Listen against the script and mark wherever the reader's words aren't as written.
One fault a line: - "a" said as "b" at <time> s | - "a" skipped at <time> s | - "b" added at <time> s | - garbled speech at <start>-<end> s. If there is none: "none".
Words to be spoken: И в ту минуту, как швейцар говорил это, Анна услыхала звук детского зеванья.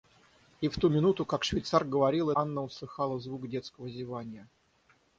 - "это" skipped at 2.3 s